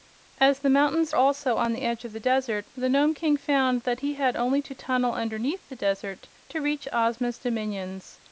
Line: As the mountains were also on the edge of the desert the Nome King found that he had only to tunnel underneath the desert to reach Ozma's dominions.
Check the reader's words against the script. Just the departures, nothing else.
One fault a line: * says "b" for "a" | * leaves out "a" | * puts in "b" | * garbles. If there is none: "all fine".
* leaves out "were"